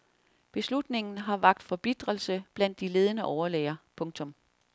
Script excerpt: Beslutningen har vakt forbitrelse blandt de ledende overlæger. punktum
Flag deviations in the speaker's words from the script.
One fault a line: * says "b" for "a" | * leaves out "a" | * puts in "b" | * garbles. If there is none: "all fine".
all fine